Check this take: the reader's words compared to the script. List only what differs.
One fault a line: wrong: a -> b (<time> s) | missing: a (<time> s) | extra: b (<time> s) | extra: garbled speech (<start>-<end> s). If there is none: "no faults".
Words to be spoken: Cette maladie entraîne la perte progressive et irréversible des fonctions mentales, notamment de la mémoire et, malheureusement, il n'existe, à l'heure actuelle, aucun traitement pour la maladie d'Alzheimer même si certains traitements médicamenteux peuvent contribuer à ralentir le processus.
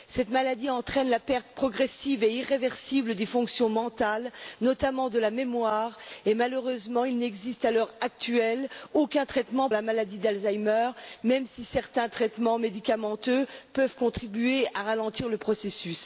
missing: pour (9.7 s)